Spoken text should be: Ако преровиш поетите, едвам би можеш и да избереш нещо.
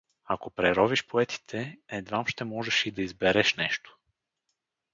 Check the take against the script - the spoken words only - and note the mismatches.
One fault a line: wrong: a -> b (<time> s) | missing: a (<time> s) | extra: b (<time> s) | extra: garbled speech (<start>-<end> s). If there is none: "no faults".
wrong: би -> ще (2.3 s)